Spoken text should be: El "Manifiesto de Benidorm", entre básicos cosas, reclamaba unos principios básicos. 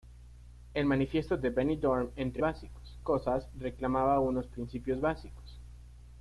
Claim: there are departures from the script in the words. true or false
false